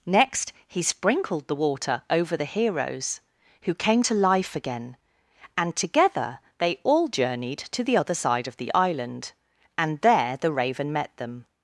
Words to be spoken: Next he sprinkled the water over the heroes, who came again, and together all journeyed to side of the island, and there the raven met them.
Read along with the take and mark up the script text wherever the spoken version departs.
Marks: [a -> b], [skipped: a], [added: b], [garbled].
Next he sprinkled the water over the heroes, who came [added: to life] again, and together [added: they] all journeyed to [added: the other] side of the island, and there the raven met them.